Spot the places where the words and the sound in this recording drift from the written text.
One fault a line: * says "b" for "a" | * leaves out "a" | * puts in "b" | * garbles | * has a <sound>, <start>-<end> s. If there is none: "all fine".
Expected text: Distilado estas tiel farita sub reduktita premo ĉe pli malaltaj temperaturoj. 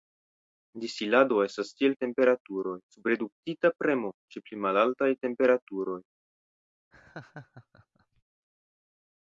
* says "temperaturoj" for "farita"
* has a laugh, 6.9-8.2 s